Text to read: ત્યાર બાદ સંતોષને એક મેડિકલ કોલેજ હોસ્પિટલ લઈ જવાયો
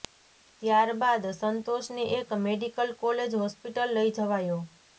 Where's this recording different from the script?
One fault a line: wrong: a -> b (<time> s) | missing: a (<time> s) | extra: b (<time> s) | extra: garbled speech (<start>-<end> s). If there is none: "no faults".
no faults